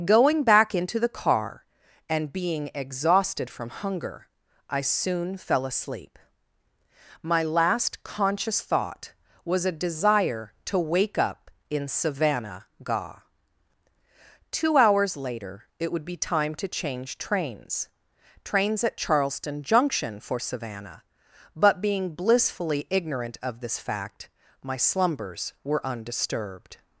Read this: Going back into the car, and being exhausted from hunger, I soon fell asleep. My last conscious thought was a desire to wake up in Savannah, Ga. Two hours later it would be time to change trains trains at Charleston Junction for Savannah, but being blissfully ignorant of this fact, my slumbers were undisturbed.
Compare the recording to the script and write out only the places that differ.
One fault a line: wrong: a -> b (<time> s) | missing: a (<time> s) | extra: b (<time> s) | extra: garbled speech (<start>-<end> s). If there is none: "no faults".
no faults